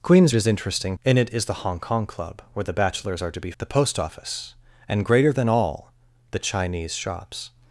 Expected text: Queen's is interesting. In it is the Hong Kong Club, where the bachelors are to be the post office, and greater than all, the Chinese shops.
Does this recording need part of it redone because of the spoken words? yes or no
no